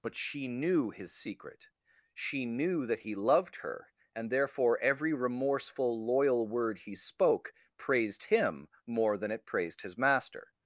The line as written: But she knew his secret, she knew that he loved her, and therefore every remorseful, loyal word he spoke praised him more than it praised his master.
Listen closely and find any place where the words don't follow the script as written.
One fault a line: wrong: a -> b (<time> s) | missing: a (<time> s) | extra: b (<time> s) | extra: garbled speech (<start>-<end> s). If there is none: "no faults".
no faults